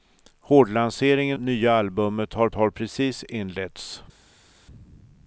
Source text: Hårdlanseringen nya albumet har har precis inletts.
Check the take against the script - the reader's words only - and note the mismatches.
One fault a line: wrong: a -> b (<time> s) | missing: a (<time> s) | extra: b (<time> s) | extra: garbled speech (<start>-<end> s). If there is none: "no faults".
no faults